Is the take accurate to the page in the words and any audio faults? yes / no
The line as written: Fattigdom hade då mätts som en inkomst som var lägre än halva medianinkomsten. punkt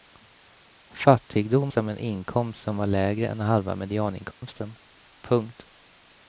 no